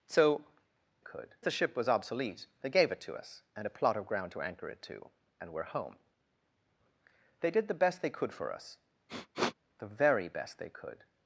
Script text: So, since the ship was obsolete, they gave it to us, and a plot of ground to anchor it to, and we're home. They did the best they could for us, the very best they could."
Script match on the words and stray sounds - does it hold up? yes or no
no